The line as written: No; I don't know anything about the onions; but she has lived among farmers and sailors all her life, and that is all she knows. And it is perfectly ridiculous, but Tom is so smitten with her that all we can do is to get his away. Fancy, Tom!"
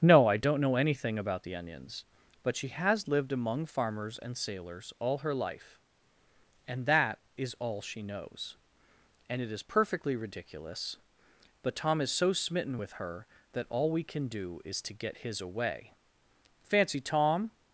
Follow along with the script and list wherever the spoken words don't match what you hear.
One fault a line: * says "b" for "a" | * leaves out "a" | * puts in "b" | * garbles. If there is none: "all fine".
all fine